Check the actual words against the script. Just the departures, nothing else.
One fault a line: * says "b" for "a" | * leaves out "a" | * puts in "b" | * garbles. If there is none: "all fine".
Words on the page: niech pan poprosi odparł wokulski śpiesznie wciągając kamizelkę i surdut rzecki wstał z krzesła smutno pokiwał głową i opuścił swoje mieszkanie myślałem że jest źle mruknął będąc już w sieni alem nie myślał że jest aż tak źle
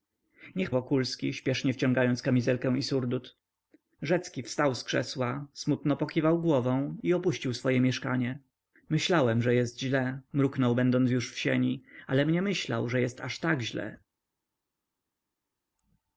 * leaves out "pan poprosi odparł"